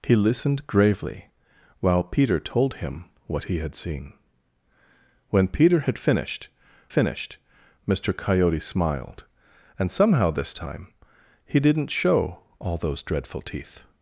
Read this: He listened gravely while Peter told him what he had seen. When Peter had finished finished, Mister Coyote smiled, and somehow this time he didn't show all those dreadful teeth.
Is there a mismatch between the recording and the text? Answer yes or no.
no